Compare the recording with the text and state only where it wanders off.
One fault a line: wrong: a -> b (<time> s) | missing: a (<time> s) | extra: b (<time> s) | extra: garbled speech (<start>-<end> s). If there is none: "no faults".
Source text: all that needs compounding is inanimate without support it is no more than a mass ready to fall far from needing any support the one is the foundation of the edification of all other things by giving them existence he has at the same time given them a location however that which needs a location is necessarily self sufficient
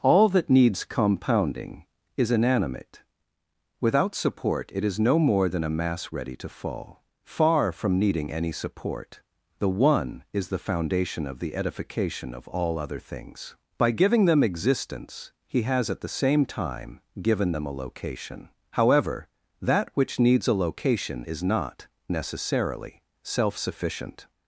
extra: not (21.4 s)